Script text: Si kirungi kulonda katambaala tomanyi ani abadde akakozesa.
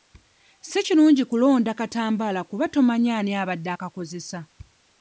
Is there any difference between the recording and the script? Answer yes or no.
yes